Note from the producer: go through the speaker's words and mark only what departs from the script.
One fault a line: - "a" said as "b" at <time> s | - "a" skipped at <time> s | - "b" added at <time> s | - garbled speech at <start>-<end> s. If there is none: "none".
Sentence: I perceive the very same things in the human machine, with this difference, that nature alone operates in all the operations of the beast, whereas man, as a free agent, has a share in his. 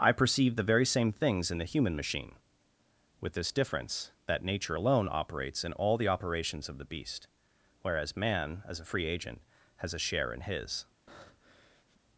none